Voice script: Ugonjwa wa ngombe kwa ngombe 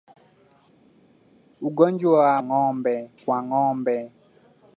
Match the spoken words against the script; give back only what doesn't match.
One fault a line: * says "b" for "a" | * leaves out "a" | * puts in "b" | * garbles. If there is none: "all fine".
all fine